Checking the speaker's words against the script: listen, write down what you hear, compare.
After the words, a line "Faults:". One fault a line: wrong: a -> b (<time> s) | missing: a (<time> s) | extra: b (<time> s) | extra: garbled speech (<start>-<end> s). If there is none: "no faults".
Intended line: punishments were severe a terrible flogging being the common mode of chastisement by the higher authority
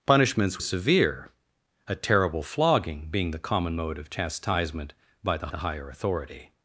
punishments severe a terrible flogging being the common mode of chastisement by the the higher authority
Faults:
missing: were (0.6 s)
extra: the (5.5 s)